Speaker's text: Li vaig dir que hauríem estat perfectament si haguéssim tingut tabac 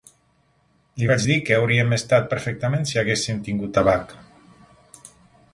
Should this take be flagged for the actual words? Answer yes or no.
no